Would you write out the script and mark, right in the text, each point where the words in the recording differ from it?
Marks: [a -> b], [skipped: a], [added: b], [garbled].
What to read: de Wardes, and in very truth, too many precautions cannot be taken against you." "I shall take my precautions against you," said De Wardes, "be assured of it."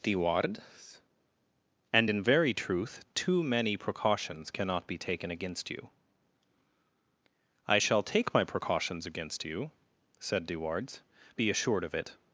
de Wardes, and in very truth, too many precautions cannot be taken against you." "I shall take my precautions against you," said De Wardes, "be assured of it."